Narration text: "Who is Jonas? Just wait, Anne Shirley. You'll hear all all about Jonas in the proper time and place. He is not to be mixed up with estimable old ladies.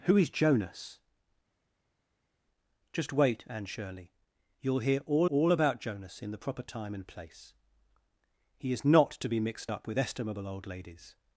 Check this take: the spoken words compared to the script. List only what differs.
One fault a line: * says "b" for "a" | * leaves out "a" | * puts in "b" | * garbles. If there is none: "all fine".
all fine